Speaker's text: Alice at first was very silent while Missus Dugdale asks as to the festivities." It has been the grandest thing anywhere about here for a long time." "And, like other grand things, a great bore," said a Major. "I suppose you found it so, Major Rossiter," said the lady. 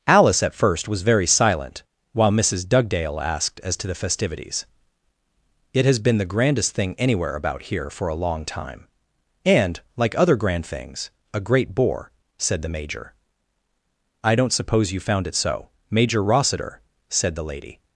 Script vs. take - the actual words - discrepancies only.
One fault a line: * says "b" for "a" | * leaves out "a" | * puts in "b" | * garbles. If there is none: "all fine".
* says "asked" for "asks"
* says "the" for "a"
* puts in "don't"